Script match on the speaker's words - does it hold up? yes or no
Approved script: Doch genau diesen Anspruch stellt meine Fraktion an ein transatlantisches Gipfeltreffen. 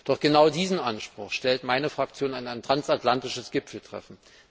yes